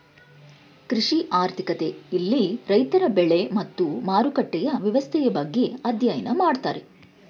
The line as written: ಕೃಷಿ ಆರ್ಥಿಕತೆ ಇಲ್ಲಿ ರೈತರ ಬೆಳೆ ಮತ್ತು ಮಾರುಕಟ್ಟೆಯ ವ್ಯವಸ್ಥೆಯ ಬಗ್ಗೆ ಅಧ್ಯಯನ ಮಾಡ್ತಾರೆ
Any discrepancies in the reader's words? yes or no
no